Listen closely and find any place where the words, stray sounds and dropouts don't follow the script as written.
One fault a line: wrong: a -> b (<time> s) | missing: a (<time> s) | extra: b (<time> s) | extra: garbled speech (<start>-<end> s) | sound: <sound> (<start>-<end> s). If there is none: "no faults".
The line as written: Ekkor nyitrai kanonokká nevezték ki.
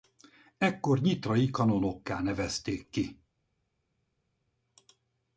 no faults